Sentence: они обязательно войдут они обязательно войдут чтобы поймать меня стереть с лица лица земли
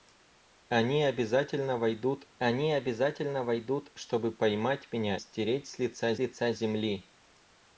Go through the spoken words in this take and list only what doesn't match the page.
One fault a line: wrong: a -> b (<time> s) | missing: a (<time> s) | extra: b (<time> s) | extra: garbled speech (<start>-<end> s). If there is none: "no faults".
no faults